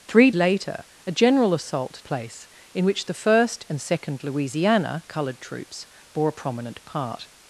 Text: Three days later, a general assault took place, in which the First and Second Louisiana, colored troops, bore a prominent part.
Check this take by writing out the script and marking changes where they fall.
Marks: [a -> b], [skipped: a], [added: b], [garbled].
Three [skipped: days] later, a general assault [skipped: took] place, in which the First and Second Louisiana, colored troops, bore a prominent part.